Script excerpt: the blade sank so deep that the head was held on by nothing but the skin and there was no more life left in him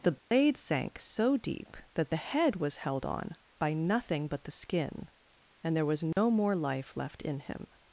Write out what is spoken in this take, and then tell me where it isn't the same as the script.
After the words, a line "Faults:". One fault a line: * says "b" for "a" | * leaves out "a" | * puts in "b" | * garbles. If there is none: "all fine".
the blade sank so deep that the head was held on by nothing but the skin and there was no more life left in him
Faults:
all fine